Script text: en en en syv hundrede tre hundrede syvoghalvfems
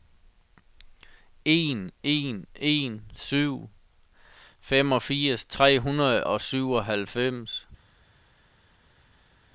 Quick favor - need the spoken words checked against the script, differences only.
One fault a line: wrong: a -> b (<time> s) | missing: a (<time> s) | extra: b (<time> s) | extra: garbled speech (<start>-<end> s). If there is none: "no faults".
wrong: hundrede -> femogfirs (4.6 s)
extra: og (6.2 s)